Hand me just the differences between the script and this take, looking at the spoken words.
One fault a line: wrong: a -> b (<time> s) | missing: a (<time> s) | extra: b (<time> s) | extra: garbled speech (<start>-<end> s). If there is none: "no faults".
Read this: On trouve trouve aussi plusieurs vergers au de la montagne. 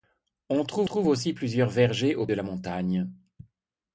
no faults